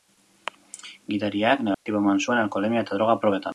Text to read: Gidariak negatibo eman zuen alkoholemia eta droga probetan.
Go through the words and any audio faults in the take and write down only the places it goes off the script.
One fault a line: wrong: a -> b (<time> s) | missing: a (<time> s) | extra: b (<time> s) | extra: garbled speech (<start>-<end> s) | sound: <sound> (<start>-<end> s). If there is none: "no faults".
sound: dropout (1.7-1.9 s)